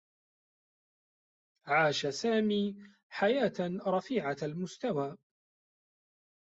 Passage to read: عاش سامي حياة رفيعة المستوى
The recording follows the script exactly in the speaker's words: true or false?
true